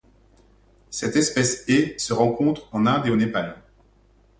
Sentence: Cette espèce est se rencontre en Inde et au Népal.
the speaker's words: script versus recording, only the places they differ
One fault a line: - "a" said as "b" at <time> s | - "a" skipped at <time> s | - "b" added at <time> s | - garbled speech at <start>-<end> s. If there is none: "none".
none